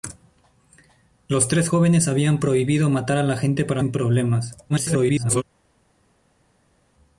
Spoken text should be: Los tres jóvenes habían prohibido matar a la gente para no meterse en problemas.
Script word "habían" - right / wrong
right